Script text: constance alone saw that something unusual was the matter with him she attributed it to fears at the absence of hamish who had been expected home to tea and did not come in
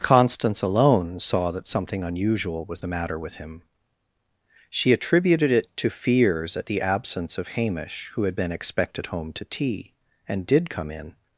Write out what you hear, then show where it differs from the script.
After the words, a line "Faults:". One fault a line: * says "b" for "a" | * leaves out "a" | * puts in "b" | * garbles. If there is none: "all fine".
constance alone saw that something unusual was the matter with him she attributed it to fears at the absence of hamish who had been expected home to tea and did come in
Faults:
* leaves out "not"